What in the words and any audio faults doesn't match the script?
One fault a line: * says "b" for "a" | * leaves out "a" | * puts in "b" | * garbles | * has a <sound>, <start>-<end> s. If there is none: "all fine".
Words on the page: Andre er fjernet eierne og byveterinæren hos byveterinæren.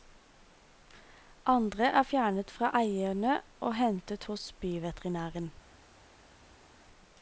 * puts in "fra"
* says "hentet" for "byveterinæren"